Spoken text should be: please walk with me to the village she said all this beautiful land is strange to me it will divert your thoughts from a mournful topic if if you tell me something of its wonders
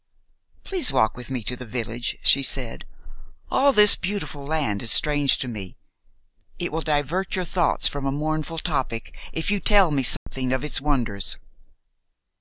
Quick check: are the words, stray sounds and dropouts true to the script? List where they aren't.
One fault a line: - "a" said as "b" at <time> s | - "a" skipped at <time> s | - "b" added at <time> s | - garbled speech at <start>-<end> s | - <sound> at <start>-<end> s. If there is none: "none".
- "if" skipped at 9.5 s
- dropout at 10.2-10.3 s